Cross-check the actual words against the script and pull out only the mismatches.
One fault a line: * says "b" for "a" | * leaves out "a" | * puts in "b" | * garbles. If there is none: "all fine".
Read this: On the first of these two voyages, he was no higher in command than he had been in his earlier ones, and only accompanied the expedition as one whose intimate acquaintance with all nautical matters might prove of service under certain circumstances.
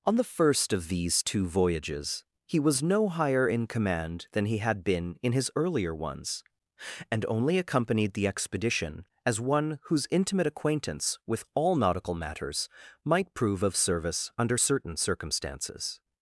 all fine